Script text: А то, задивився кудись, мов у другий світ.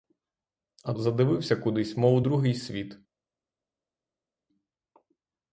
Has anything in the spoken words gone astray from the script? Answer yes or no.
yes